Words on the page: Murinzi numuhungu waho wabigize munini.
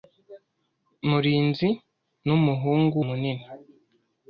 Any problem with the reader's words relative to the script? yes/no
yes